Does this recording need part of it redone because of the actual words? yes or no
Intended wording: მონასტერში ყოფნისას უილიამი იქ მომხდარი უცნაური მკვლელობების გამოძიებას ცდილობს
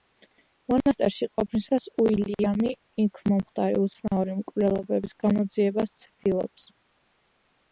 no